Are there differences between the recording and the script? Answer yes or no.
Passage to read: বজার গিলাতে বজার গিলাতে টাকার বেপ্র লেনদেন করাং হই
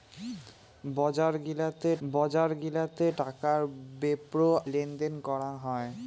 no